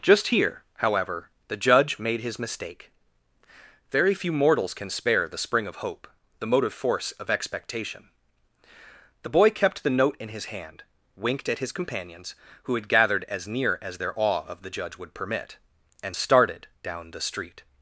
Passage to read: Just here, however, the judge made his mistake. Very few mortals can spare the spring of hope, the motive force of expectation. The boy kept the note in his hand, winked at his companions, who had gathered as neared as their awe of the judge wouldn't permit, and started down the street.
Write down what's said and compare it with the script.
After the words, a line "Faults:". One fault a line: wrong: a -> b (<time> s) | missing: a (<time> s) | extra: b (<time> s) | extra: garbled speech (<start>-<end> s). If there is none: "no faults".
Just here, however, the judge made his mistake. Very few mortals can spare the spring of hope, the motive force of expectation. The boy kept the note in his hand, winked at his companions, who had gathered as near as their awe of the judge would permit, and started down the street.
Faults:
wrong: neared -> near (13.5 s)
wrong: wouldn't -> would (15.0 s)